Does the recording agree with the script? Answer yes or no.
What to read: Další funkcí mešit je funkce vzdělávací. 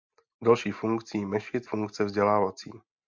no